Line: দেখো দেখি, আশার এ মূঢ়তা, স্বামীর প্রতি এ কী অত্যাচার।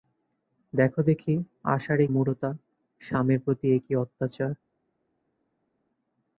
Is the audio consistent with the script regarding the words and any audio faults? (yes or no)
yes